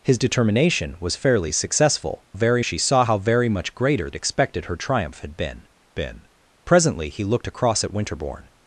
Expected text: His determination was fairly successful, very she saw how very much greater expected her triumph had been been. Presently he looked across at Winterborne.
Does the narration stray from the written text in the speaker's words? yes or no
no